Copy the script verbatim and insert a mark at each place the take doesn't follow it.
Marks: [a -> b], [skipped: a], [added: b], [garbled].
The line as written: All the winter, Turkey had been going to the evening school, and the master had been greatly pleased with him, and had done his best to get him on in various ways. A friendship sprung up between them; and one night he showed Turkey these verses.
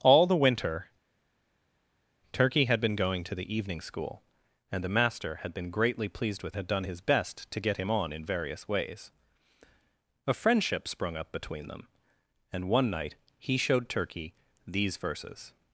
All the winter, Turkey had been going to the evening school, and the master had been greatly pleased with [skipped: him, and] had done his best to get him on in various ways. A friendship sprung up between them; and one night he showed Turkey these verses.